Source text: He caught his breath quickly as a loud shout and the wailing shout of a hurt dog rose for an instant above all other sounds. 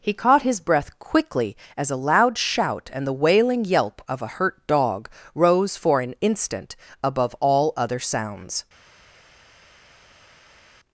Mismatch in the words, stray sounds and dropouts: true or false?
true